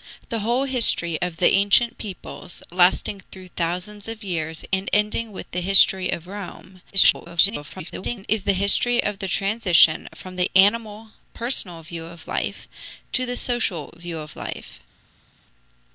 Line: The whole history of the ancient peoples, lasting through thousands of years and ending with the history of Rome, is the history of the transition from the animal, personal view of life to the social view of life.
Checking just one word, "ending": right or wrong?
right